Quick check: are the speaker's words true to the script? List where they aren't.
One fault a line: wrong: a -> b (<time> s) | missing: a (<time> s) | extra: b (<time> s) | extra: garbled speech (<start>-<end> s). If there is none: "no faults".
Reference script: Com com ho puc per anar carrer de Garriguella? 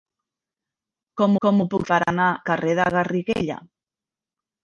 no faults